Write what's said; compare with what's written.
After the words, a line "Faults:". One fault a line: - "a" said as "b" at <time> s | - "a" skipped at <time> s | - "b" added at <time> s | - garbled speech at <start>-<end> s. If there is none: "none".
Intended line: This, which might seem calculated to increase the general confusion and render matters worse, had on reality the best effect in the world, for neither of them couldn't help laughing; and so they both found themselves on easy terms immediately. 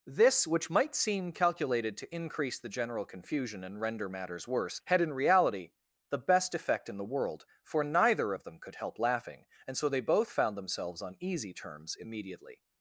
This, which might seem calculated to increase the general confusion and render matters worse, had in reality the best effect in the world, for neither of them could help laughing; and so they both found themselves on easy terms immediately.
Faults:
- "on" said as "in" at 5.0 s
- "couldn't" said as "could" at 8.6 s